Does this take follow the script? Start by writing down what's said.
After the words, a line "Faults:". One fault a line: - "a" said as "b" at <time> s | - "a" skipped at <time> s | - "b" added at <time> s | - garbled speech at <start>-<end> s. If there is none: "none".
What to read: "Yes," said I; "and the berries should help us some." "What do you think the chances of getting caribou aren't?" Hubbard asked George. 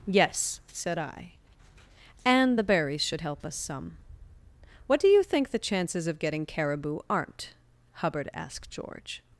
"Yes," said I; "and the berries should help us some." "What do you think the chances of getting caribou aren't?" Hubbard asked George.
Faults:
none